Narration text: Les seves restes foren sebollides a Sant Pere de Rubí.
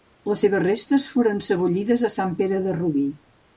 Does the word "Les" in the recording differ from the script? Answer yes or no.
no